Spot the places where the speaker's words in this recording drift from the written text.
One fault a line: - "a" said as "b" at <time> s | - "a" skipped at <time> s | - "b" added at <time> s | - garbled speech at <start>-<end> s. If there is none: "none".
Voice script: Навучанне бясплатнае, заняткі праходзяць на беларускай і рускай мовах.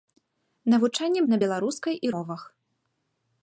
- "бясплатнае заняткі праходзяць" skipped at 1.2 s
- "рускай" skipped at 2.1 s